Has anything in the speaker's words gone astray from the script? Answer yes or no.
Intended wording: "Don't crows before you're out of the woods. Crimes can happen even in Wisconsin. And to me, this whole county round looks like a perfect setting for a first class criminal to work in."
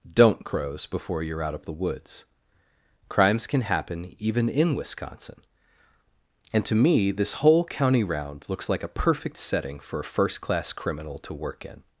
no